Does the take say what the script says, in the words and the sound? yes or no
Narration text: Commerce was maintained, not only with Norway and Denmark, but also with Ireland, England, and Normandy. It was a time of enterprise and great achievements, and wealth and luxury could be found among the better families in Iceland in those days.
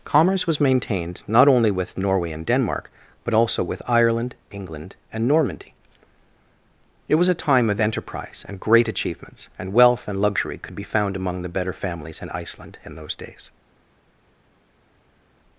yes